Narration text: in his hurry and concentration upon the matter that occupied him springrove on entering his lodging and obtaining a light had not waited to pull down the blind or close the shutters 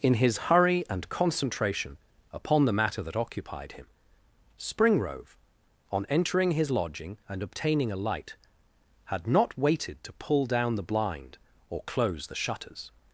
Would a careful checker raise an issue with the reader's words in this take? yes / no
no